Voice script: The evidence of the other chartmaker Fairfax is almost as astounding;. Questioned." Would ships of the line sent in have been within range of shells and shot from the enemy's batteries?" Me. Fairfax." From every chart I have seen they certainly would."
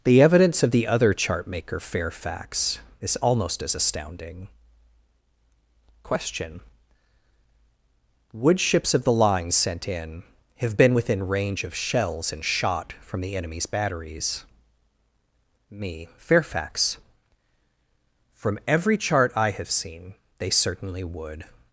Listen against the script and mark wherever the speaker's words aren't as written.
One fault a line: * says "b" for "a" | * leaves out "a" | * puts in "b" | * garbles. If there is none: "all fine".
* says "Question" for "Questioned"